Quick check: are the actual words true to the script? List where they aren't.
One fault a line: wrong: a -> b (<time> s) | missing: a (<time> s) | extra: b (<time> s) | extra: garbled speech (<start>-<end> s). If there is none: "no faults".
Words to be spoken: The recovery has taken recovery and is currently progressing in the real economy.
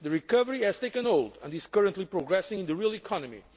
wrong: recovery -> hold (1.1 s)